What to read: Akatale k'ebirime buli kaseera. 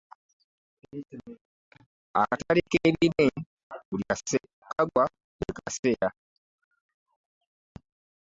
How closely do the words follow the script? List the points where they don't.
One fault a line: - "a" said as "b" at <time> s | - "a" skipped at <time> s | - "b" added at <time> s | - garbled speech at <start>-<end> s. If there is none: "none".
none